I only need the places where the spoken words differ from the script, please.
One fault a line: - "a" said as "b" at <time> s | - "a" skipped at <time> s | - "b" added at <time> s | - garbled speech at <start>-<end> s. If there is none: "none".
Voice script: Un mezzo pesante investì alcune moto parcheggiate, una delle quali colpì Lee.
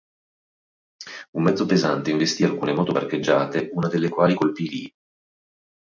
none